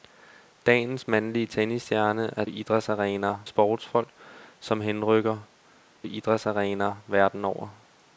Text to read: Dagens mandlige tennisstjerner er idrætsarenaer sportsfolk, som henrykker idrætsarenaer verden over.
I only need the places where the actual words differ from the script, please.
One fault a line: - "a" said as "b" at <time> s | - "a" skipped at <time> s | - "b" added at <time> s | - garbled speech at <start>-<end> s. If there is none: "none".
none